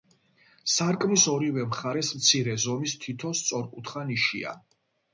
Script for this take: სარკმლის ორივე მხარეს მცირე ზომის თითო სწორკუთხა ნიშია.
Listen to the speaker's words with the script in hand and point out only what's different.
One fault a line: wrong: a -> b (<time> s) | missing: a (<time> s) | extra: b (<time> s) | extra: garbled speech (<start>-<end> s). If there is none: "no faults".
no faults